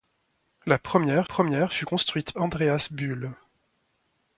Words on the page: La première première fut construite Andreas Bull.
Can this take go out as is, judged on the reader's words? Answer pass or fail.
pass